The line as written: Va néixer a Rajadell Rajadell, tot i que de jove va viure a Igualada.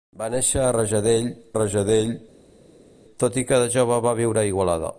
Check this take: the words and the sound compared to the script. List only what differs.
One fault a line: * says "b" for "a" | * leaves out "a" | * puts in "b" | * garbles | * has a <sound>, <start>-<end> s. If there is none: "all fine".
all fine